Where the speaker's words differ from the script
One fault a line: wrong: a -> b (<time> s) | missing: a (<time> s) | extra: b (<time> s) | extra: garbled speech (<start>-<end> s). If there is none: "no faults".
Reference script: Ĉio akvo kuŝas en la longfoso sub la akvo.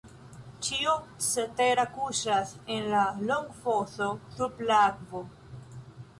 wrong: akvo -> cetera (1.2 s)